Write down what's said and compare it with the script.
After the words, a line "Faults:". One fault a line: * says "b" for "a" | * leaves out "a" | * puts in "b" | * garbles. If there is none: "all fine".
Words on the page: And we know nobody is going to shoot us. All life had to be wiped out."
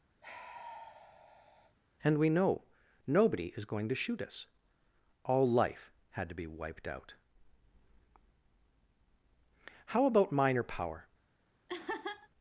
And we know nobody is going to shoot us. All life had to be wiped out." "How about minor power
Faults:
* puts in "How about minor power"